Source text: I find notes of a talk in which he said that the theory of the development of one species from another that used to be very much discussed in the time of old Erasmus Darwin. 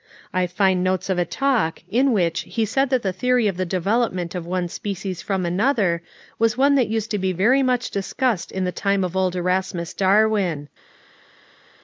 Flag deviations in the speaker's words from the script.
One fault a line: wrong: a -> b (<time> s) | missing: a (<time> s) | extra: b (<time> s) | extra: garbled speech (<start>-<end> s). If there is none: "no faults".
extra: was one (6.4 s)